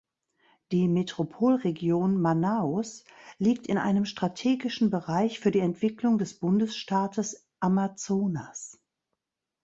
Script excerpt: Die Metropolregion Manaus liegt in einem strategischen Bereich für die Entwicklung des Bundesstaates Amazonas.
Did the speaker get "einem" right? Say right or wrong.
right